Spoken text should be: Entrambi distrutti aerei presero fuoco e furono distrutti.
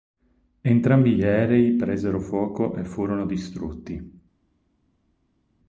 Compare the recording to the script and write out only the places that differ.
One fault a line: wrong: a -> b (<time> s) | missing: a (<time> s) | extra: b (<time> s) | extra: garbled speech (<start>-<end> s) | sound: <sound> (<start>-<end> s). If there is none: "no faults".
wrong: distrutti -> gli (1.1 s)